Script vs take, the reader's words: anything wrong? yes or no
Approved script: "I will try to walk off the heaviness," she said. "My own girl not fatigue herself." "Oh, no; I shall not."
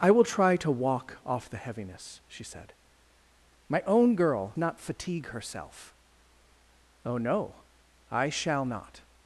no